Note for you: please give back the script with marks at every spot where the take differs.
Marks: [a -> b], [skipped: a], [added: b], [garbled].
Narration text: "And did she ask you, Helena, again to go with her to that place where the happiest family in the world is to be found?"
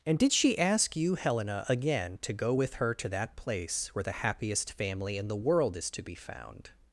"And did she ask you, Helena, again to go with her to that place where the happiest family in the world is to be found?"